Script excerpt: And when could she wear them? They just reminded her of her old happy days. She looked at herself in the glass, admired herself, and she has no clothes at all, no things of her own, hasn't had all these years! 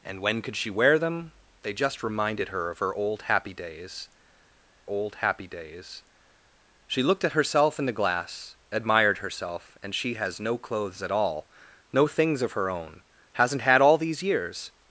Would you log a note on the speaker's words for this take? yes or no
yes